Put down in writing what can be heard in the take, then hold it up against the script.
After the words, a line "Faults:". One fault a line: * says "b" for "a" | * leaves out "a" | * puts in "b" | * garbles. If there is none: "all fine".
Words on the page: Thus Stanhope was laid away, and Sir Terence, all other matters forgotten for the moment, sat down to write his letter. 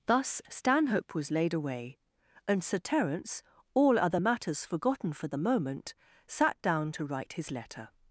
Thus Stanhope was laid away, and Sir Terence, all other matters forgotten for the moment, sat down to write his letter.
Faults:
all fine